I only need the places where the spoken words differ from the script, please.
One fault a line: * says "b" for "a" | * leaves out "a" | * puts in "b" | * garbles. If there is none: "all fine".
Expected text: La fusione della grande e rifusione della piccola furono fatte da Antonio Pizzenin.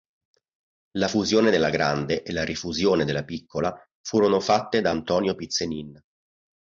* puts in "la"